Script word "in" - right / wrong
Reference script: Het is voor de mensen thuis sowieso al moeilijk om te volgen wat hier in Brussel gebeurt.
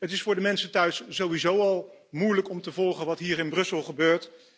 right